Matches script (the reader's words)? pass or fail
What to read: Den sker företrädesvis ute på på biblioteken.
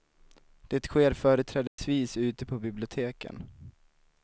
fail